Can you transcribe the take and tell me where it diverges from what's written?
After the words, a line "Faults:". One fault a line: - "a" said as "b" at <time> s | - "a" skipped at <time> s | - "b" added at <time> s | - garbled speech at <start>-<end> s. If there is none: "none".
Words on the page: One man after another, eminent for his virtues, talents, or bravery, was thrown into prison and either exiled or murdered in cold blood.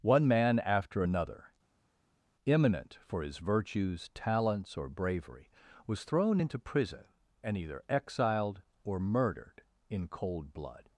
One man after another, eminent for his virtues, talents, or bravery, was thrown into prison and either exiled or murdered in cold blood.
Faults:
none